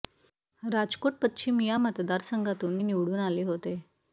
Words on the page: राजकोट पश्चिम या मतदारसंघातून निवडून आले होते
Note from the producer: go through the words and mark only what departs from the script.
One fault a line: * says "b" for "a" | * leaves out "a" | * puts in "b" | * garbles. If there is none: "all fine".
all fine